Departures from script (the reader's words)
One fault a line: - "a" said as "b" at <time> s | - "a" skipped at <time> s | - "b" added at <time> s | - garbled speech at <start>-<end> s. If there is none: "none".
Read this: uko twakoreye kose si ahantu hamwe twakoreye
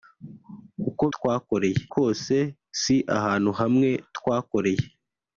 none